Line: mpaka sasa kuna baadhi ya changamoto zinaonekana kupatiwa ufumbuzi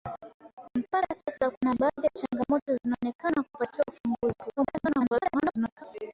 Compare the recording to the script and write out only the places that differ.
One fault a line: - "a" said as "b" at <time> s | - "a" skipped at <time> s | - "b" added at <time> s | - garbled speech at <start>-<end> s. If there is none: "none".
- garbled speech at 4.6-5.8 s